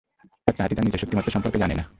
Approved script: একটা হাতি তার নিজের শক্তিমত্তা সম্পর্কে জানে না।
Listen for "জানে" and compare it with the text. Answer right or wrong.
right